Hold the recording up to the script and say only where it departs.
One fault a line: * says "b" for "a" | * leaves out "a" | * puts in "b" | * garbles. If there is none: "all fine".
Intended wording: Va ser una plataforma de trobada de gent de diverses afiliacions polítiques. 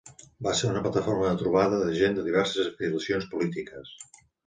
all fine